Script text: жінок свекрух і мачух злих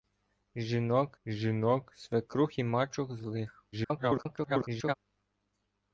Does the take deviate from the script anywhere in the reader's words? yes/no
yes